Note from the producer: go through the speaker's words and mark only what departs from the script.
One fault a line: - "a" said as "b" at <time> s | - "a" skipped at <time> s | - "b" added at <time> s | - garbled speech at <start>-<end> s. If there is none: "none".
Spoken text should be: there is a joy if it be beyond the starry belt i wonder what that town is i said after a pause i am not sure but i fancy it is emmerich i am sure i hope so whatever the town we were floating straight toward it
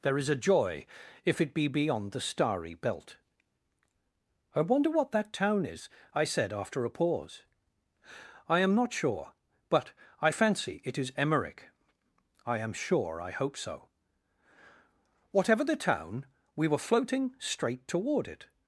none